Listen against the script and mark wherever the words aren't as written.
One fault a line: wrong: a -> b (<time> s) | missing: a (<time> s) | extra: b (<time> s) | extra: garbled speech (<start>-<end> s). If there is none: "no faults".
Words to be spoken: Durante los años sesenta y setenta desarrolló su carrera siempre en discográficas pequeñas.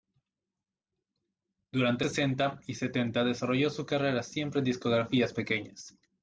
missing: los años (2.0 s)